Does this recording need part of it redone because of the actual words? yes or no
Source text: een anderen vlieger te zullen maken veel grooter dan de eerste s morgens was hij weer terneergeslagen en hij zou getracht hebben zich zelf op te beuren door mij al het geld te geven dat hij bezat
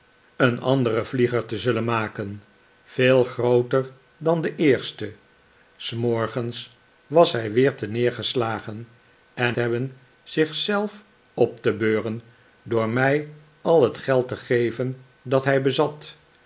yes